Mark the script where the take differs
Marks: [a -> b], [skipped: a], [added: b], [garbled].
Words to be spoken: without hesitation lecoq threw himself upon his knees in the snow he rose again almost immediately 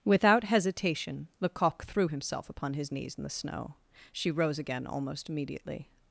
without hesitation lecoq threw himself upon his knees in the snow [he -> she] rose again almost immediately